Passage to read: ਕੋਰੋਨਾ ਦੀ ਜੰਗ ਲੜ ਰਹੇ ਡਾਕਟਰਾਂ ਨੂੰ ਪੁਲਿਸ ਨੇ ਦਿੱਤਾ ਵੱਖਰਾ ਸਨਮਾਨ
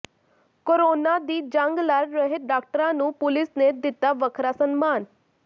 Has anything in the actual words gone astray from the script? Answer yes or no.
no